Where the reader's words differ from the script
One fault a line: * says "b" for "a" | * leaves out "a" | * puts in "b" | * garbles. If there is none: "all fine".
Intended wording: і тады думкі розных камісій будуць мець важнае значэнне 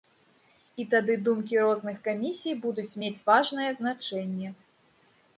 all fine